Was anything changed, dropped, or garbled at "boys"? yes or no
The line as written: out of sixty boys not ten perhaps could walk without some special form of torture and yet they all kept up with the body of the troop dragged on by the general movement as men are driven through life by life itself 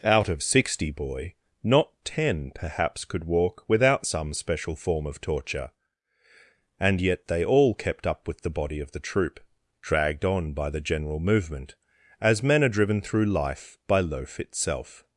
yes